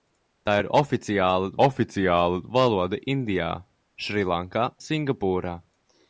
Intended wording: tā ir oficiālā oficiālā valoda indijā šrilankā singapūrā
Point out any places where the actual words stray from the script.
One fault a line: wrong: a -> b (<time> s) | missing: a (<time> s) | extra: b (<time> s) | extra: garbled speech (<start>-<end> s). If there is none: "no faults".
no faults